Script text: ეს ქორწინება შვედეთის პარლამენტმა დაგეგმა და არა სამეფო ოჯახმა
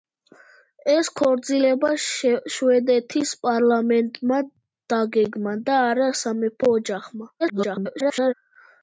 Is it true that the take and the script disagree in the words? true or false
true